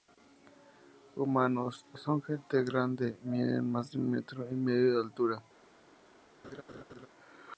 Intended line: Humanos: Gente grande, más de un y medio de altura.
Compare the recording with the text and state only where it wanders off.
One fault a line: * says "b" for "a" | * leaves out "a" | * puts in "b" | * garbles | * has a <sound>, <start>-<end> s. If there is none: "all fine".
* puts in "Son"
* puts in "miden"
* puts in "metro"
* has a laugh, 6.4-7.1 s